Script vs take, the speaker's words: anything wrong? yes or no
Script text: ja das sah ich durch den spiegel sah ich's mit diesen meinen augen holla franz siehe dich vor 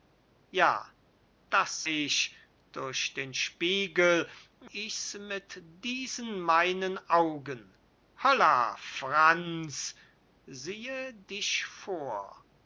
yes